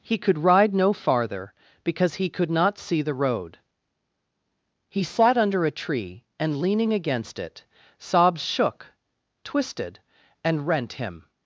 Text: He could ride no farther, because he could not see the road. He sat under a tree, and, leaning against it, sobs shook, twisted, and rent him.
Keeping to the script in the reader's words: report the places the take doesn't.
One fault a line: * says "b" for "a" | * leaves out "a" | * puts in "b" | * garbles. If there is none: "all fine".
all fine